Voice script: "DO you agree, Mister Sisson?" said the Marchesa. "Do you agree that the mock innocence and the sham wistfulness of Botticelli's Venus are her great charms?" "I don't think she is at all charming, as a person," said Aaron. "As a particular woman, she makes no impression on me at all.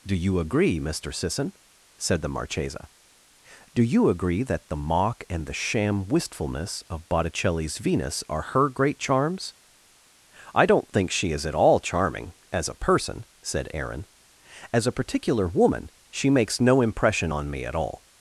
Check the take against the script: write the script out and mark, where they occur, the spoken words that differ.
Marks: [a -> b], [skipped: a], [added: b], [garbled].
"DO you agree, Mister Sisson?" said the Marchesa. "Do you agree that the mock [skipped: innocence] and the sham wistfulness of Botticelli's Venus are her great charms?" "I don't think she is at all charming, as a person," said Aaron. "As a particular woman, she makes no impression on me at all.